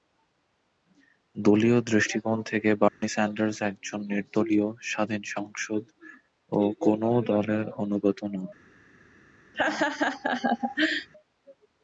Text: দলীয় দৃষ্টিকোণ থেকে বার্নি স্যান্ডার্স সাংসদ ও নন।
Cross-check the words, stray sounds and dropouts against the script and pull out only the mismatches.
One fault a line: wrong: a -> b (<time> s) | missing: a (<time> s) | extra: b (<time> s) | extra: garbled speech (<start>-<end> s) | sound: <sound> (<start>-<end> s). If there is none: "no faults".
sound: dropout (2.9-3.0 s)
extra: একজন নির্দলীয় স্বাধীন (3.6 s)
extra: কোনও দলের অনুগত (6.8 s)
sound: laugh (9.5-11.1 s)